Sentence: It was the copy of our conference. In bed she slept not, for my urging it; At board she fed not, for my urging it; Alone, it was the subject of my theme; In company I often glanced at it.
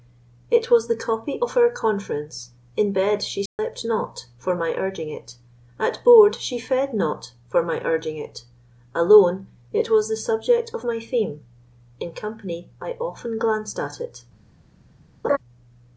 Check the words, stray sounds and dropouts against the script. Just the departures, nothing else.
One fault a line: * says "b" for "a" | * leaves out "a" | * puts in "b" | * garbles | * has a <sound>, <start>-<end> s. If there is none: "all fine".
* has a dropout, 3.5-3.6 s
* has a laugh, 15.2-15.4 s